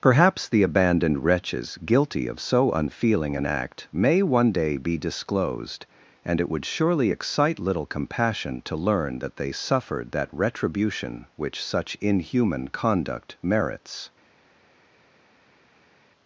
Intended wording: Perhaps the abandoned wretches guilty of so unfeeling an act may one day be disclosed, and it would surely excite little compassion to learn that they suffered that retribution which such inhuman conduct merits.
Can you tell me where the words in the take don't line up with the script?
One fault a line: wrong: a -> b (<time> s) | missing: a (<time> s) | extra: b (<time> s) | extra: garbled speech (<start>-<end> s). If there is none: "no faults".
no faults